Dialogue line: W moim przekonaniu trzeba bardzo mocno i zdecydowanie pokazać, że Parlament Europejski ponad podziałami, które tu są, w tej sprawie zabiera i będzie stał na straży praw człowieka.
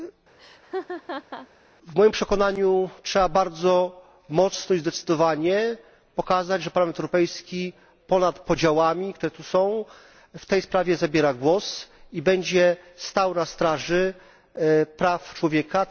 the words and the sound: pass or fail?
fail